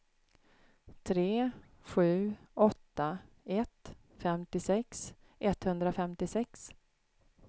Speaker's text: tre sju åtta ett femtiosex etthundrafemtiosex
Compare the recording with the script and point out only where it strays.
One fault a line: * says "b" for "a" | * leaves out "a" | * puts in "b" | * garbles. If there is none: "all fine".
all fine